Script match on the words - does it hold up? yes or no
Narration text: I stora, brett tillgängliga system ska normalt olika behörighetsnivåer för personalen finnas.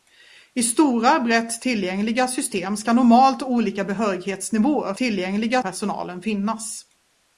no